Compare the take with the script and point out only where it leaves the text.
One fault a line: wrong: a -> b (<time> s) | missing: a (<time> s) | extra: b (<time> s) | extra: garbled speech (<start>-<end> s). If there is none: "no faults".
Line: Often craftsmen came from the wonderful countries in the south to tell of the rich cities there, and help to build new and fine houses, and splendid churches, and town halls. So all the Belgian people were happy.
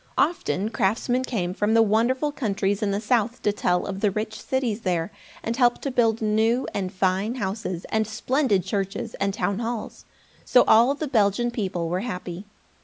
no faults